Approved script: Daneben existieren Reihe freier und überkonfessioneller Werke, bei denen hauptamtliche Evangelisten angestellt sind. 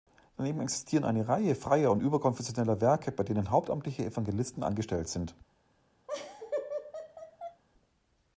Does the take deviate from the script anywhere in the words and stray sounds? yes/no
yes